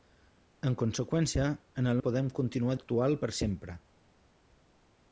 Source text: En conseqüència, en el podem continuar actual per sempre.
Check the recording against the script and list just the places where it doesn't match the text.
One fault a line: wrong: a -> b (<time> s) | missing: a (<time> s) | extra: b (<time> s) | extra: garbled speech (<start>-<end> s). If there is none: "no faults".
no faults